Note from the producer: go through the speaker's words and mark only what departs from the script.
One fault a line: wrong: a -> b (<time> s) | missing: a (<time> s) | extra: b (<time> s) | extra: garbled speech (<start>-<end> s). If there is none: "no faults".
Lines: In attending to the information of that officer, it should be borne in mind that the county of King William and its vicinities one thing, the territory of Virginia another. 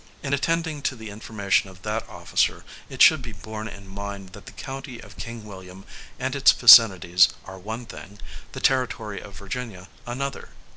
extra: are (7.4 s)